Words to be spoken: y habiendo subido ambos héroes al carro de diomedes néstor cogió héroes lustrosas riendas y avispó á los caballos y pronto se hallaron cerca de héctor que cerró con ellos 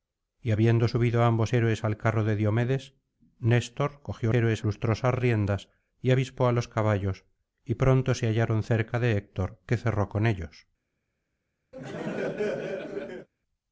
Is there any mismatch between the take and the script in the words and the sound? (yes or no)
yes